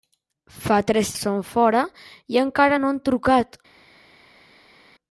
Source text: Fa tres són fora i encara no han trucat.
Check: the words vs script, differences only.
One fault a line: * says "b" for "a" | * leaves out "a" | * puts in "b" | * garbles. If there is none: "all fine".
all fine